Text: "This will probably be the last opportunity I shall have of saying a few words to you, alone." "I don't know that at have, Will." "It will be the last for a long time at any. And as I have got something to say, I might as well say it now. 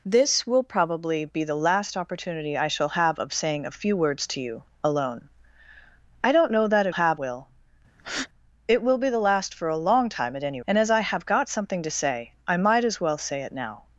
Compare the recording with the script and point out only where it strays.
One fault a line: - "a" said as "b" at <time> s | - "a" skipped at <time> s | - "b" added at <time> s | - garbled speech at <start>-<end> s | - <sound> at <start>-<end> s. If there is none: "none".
- breath at 8.0-8.3 s